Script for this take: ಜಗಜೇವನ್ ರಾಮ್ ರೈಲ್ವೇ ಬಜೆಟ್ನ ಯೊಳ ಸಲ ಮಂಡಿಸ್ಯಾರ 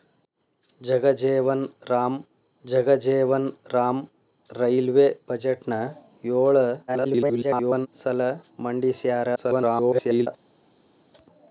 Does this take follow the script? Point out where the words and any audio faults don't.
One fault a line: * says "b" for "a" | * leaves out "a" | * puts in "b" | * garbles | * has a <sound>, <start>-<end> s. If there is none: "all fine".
* puts in "ಜಗಜೇವನ್ ರಾಮ್"
* garbles
* garbles